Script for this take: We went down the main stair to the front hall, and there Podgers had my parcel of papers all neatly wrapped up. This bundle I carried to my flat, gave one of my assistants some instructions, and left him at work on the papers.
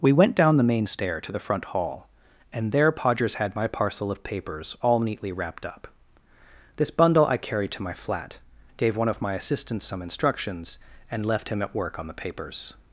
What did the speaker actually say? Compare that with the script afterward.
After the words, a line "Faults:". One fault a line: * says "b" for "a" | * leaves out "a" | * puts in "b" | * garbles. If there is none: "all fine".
We went down the main stair to the front hall, and there Podgers had my parcel of papers all neatly wrapped up. This bundle I carried to my flat, gave one of my assistants some instructions, and left him at work on the papers.
Faults:
all fine